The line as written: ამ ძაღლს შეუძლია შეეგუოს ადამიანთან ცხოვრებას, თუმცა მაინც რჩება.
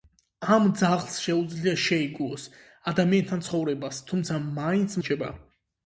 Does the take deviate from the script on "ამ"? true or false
false